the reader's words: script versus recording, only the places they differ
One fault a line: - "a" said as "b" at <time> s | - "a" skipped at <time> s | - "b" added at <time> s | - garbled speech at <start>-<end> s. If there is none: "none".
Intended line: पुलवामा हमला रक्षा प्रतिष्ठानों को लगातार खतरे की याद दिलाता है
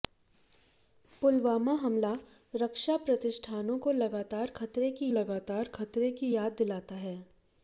- "लगातार खतरे की" added at 5.2 s